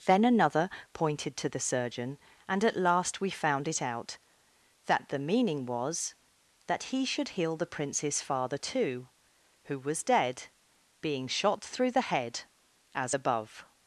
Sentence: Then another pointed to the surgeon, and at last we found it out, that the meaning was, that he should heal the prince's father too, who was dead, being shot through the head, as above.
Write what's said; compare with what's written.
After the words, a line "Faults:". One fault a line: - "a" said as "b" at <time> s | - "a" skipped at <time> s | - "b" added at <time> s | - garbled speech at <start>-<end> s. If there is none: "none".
Then another pointed to the surgeon, and at last we found it out, that the meaning was, that he should heal the prince's father too, who was dead, being shot through the head, as above.
Faults:
none